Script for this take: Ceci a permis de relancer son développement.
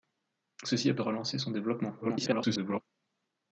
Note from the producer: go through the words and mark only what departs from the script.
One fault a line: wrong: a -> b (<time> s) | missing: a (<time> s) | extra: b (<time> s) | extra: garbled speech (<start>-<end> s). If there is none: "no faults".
missing: permis (0.9 s)
extra: garbled speech (2.0-2.8 s)